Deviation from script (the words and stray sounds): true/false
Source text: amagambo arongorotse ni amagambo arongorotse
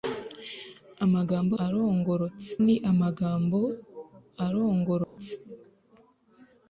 true